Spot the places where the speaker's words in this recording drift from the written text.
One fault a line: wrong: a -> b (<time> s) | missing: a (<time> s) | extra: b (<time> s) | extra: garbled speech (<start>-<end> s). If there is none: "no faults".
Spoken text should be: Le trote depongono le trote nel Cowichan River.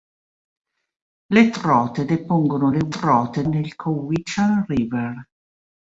no faults